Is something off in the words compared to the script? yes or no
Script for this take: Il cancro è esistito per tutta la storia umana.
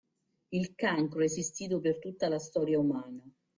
no